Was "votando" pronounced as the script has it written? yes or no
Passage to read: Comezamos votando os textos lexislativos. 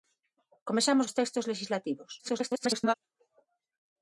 no